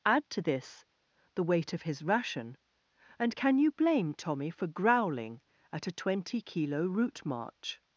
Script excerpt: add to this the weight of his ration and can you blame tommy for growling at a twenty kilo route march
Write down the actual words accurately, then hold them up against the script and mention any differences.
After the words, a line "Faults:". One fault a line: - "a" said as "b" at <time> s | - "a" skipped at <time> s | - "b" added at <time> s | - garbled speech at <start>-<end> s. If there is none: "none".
add to this the weight of his ration and can you blame tommy for growling at a twenty kilo route march
Faults:
none